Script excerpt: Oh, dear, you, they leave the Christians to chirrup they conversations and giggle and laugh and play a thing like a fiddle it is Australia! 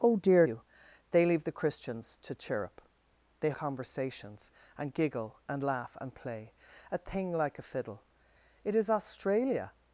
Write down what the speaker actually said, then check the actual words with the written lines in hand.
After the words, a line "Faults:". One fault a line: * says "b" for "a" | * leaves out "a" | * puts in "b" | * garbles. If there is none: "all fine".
Oh, dear, you, they leave the Christians to chirrup they conversations and giggle and laugh and play a thing like a fiddle it is Australia!
Faults:
all fine